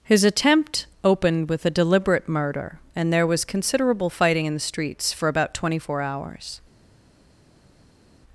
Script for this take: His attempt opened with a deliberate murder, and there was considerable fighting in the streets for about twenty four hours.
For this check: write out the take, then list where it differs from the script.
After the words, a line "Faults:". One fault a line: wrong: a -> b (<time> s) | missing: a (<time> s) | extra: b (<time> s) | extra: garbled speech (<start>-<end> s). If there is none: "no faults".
His attempt opened with a deliberate murder, and there was considerable fighting in the streets for about twenty four hours.
Faults:
no faults